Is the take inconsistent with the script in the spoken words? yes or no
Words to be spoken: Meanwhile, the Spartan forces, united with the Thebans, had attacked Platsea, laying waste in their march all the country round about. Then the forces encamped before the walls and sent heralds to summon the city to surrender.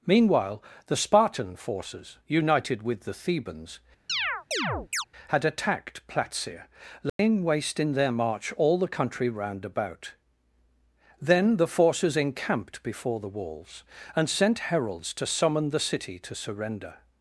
no